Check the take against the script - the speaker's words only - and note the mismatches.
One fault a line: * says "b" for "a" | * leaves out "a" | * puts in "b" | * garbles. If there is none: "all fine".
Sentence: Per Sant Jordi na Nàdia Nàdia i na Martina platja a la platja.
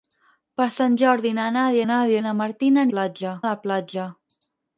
all fine